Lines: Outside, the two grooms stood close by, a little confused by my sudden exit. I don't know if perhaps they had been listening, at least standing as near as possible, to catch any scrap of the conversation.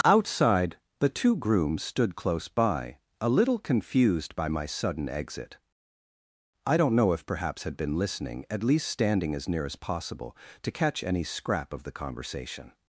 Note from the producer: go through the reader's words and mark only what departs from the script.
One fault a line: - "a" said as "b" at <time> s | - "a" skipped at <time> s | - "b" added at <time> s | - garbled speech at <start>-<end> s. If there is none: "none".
- "they" skipped at 7.6 s